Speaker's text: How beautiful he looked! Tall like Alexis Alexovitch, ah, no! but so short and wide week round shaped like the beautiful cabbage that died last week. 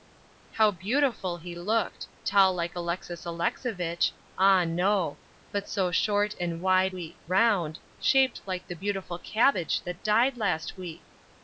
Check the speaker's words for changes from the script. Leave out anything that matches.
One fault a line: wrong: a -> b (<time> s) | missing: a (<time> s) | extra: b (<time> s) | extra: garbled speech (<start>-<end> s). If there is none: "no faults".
no faults